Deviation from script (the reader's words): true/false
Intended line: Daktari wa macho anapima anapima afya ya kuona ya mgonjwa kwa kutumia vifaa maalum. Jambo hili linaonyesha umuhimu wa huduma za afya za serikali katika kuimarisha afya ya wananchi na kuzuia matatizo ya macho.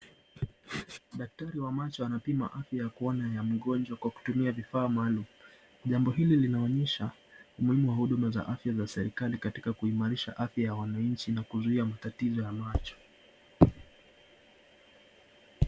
true